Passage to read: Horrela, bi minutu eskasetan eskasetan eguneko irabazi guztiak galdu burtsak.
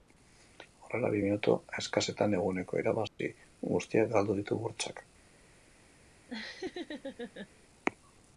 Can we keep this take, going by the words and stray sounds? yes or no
no